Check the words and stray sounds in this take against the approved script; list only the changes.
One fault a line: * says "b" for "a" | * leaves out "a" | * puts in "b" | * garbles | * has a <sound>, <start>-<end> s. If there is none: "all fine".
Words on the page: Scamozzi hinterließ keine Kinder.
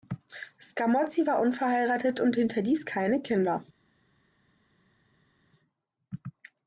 * puts in "war unverheiratet und"